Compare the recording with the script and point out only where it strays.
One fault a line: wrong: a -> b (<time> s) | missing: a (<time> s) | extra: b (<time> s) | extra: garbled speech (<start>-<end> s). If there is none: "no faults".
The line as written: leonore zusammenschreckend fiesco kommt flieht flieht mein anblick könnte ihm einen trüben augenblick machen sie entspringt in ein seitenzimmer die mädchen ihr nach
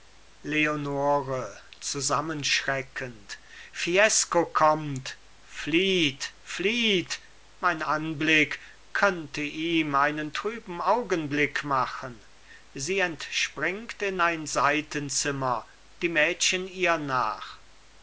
no faults